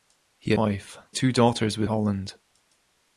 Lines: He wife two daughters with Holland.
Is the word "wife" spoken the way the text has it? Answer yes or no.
yes